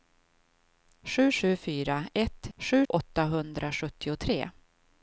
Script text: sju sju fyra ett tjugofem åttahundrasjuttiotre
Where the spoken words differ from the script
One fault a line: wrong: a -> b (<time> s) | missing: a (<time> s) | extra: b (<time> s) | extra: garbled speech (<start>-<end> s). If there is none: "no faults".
wrong: tjugofem -> sju (2.6 s)